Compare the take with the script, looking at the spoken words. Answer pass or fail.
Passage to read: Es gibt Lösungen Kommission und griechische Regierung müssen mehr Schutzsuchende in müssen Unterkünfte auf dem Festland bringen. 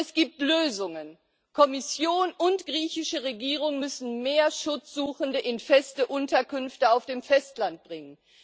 fail